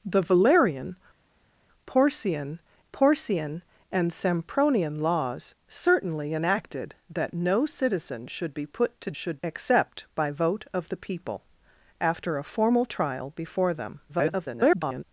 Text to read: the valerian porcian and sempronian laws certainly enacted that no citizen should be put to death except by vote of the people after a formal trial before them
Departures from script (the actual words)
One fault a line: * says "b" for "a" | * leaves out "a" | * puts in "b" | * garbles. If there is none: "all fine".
* puts in "porcian"
* says "should" for "death"
* garbles